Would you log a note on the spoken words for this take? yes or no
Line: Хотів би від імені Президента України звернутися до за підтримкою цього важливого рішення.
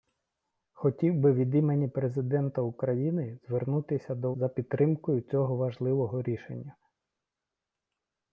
no